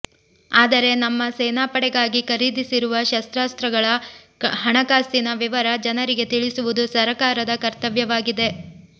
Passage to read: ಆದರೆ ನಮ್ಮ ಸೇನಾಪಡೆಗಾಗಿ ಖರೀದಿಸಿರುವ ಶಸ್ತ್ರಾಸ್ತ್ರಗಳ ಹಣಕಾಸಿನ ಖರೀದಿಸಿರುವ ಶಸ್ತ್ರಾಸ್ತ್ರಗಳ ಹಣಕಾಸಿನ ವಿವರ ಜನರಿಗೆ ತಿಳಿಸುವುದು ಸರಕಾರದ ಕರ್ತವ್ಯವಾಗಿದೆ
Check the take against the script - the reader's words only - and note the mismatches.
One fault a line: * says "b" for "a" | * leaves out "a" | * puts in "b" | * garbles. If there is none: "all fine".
* leaves out "ಖರೀದಿಸಿರುವ ಶಸ್ತ್ರಾಸ್ತ್ರಗಳ ಹಣಕಾಸಿನ"